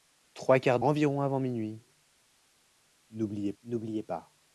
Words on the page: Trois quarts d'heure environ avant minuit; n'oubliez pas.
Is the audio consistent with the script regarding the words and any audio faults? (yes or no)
no